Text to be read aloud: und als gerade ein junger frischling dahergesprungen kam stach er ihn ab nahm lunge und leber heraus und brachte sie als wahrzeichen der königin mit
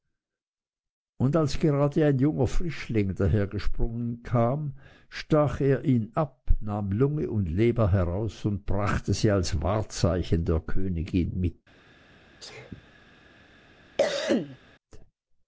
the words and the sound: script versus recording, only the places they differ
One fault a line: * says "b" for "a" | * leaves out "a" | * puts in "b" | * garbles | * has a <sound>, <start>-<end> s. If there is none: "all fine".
* has a sneeze, 12.4-12.9 s
* has a cough, 14.0-14.6 s